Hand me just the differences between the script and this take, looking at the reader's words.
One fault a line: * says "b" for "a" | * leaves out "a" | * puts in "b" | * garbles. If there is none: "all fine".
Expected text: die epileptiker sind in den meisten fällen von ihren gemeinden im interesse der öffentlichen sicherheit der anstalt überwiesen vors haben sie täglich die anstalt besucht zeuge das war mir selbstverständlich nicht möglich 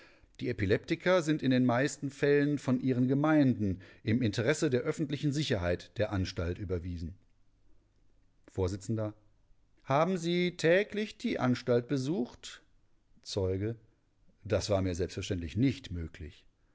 all fine